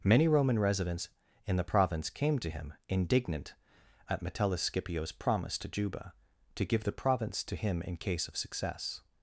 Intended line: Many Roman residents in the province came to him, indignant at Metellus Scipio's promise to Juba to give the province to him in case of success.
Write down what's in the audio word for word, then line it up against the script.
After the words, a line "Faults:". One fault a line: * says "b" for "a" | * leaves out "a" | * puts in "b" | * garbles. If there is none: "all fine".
Many Roman residents in the province came to him, indignant at Metellus Scipio's promise to Juba to give the province to him in case of success.
Faults:
all fine